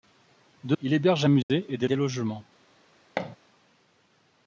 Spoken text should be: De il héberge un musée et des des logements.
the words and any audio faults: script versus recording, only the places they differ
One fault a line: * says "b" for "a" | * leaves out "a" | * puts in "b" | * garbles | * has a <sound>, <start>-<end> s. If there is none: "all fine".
* has a dropout, 1.4-1.5 s
* has a thud, 3.2-3.4 s